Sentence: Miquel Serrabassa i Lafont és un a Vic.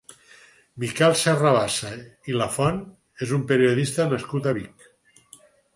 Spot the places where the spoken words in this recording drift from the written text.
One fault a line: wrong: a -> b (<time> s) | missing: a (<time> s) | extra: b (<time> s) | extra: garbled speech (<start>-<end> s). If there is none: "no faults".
extra: periodista nascut (3.5 s)